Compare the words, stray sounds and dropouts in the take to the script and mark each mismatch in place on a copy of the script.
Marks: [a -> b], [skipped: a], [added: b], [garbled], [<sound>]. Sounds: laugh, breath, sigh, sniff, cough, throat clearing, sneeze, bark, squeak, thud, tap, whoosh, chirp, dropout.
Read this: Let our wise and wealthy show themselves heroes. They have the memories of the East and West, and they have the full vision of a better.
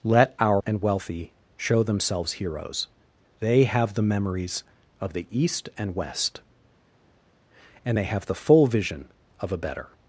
Let our [skipped: wise] and wealthy show themselves heroes. They have the memories of the East and West, and they have the full vision of a better.